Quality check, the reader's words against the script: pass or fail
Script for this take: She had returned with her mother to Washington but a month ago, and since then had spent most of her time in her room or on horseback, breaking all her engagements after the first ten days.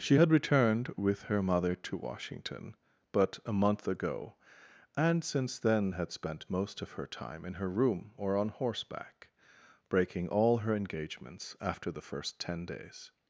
pass